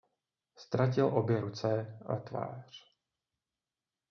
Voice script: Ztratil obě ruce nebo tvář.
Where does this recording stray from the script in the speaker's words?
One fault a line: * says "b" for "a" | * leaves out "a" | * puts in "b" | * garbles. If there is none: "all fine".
* says "a" for "nebo"